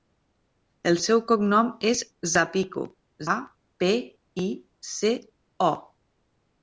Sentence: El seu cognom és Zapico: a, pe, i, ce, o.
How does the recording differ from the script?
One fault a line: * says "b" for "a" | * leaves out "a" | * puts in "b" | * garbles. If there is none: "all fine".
all fine